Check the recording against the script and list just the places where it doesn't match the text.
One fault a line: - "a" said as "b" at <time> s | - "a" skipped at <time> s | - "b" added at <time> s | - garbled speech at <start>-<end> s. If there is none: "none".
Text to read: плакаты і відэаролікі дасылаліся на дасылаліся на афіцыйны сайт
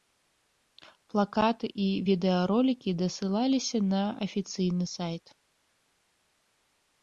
- "дасылаліся на" skipped at 4.0 s